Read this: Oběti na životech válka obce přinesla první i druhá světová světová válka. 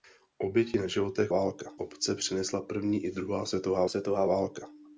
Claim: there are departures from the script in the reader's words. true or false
false